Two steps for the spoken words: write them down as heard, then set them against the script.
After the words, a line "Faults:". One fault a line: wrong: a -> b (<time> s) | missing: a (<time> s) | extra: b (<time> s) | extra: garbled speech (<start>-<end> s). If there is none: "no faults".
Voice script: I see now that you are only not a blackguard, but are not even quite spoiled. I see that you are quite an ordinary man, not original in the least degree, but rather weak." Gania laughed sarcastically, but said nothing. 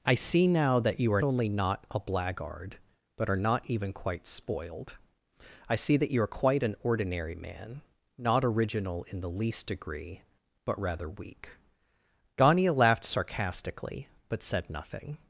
I see now that you are only not a blackguard, but are not even quite spoiled. I see that you are quite an ordinary man, not original in the least degree, but rather weak." Gania laughed sarcastically, but said nothing.
Faults:
no faults